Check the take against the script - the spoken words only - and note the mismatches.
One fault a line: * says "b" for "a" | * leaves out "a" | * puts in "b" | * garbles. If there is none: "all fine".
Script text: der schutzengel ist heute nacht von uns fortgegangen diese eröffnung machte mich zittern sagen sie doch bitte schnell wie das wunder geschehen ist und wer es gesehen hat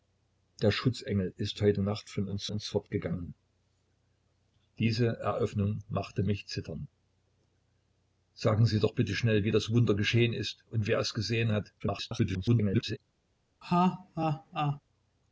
* puts in "uns"
* garbles